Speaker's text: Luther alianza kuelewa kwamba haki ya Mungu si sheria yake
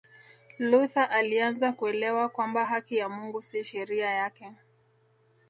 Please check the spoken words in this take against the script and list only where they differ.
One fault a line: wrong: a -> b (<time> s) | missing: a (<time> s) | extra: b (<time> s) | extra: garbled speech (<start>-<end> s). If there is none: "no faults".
no faults